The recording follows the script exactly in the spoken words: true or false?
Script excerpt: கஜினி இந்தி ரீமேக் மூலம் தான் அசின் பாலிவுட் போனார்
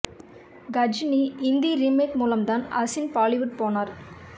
true